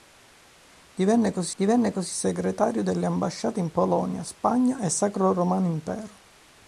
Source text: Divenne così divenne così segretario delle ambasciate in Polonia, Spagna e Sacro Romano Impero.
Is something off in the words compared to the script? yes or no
no